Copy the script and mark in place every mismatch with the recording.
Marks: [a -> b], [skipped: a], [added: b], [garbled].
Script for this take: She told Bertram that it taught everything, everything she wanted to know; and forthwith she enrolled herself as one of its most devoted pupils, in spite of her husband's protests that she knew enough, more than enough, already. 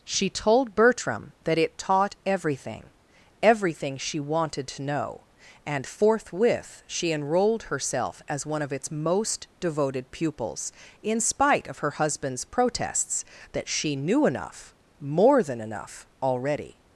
She told Bertram that it taught everything, everything she wanted to know; and forthwith she enrolled herself as one of its most devoted pupils, in spite of her husband's protests that she knew enough, more than enough, already.